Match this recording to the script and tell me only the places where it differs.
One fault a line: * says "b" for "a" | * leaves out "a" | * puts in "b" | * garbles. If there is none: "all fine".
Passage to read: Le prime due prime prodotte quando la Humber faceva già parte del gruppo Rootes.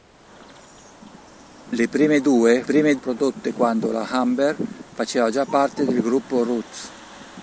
all fine